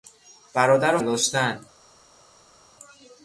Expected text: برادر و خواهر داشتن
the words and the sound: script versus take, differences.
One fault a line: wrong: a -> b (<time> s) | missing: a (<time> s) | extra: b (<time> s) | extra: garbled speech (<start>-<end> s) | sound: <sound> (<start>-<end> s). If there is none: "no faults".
missing: خواهر (1.0 s)